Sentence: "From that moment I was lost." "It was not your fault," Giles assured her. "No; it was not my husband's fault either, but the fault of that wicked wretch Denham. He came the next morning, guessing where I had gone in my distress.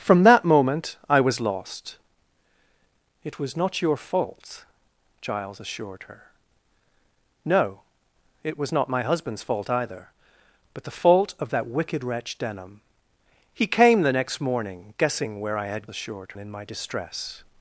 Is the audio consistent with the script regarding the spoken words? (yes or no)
no